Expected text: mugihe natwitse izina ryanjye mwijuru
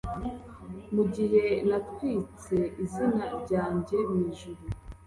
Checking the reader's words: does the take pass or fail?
pass